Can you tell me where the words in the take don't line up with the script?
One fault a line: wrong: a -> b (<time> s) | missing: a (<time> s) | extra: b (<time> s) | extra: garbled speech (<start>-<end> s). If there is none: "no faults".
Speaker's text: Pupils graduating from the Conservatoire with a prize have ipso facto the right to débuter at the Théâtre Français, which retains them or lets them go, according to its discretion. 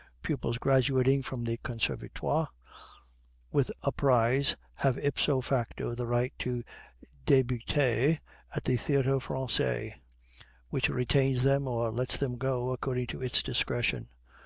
no faults